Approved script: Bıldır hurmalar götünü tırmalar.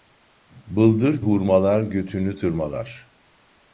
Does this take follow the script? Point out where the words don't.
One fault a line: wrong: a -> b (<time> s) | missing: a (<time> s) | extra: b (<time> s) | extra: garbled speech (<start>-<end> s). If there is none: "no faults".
no faults